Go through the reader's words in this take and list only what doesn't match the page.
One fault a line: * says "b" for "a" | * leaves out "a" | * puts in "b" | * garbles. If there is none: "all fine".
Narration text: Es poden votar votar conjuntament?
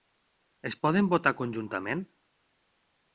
* leaves out "votar"